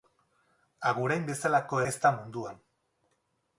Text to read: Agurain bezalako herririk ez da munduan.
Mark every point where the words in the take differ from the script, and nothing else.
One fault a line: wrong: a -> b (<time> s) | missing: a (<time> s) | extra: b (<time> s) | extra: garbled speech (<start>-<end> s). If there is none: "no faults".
missing: herririk (1.8 s)